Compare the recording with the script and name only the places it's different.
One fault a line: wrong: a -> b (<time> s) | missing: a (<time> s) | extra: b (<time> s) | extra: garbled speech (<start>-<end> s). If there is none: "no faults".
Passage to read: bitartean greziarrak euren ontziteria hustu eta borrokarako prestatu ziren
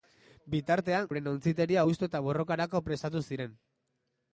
missing: greziarrak (1.1 s)